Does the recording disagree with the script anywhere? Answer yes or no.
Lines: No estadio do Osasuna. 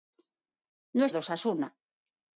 yes